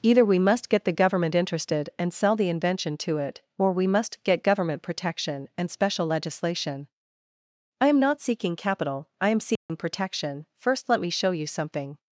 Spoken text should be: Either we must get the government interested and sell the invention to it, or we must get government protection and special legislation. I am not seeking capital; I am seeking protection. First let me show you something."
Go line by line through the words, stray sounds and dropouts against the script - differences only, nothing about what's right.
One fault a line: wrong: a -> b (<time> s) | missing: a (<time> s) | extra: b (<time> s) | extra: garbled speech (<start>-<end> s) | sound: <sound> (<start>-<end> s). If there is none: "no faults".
sound: dropout (9.6-9.7 s)